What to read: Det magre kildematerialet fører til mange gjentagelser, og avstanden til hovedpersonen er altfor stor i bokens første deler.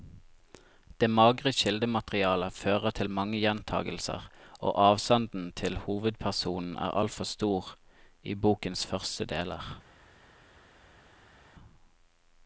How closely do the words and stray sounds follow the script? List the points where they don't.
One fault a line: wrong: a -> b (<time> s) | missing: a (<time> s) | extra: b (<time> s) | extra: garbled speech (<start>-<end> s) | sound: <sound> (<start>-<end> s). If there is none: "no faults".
no faults